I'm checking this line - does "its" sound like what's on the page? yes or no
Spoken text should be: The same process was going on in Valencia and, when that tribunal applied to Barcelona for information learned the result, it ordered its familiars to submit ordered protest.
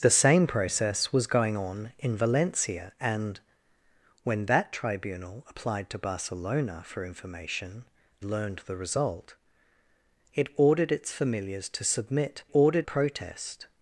yes